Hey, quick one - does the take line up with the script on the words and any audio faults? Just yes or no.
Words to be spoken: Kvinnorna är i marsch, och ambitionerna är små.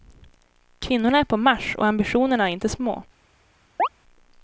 no